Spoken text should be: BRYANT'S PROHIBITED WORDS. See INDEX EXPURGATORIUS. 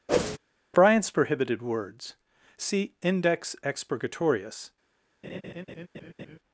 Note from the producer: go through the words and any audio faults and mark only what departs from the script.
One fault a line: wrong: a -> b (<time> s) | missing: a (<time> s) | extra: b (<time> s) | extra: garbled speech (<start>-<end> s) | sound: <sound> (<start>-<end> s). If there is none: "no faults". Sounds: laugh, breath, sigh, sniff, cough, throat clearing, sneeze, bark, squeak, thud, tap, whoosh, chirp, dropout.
sound: whoosh (0.1-0.4 s)
sound: laugh (5.2-6.4 s)